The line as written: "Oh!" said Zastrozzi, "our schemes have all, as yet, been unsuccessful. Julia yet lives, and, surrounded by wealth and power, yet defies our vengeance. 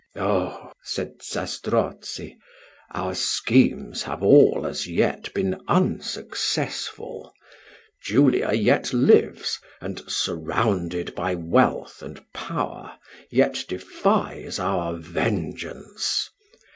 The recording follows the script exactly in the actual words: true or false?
true